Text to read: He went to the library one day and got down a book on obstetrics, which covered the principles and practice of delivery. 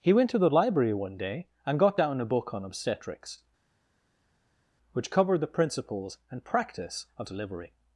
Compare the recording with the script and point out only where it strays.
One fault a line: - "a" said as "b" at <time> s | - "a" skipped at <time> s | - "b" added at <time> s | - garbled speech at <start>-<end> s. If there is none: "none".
none